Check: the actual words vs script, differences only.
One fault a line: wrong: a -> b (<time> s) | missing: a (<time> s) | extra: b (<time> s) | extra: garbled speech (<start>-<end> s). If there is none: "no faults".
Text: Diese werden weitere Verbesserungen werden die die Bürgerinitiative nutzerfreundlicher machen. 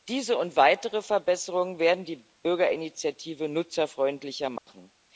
wrong: werden -> und (0.4 s)
missing: die (2.2 s)